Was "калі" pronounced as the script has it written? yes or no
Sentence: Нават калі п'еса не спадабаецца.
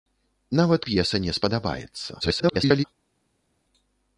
no